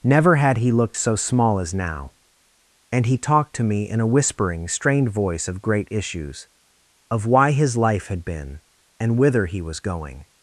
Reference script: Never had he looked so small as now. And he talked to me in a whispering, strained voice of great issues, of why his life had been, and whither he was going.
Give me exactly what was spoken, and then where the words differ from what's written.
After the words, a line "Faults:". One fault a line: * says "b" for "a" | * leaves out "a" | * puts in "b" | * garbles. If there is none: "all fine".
Never had he looked so small as now. And he talked to me in a whispering, strained voice of great issues, of why his life had been, and whither he was going.
Faults:
all fine